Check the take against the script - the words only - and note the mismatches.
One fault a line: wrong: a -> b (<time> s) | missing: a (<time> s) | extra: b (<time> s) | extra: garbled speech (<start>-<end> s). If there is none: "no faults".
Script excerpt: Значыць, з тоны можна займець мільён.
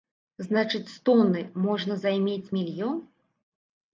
no faults